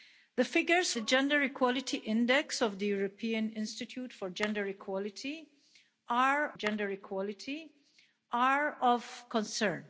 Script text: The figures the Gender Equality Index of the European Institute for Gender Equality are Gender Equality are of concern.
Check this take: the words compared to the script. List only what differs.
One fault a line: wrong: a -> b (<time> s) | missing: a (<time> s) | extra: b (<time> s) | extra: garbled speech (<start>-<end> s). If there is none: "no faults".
no faults